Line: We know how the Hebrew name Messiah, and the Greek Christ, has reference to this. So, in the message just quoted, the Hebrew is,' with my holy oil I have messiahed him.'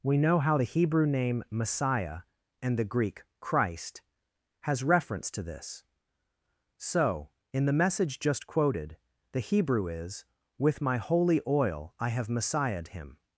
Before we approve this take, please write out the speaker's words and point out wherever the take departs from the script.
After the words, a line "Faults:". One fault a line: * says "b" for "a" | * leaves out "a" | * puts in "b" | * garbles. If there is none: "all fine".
We know how the Hebrew name Messiah, and the Greek Christ, has reference to this. So, in the message just quoted, the Hebrew is,' with my holy oil I have messiahed him.'
Faults:
all fine